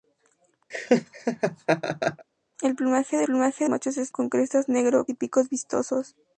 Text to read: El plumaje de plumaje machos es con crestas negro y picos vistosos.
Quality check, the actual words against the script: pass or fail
pass